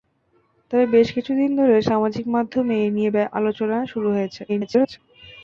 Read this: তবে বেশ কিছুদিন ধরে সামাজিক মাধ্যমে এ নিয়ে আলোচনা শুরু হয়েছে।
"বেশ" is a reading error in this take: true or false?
false